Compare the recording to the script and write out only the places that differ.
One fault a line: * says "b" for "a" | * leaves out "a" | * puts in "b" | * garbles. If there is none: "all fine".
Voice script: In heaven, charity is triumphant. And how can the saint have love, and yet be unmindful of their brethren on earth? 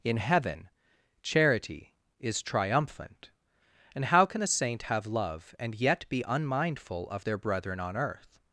all fine